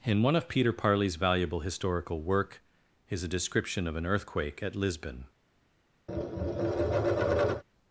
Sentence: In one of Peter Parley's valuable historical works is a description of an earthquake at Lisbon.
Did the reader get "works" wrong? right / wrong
wrong